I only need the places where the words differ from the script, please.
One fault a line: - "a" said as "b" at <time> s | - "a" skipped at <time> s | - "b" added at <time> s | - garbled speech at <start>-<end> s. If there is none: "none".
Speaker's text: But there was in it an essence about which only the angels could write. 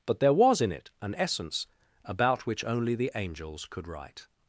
none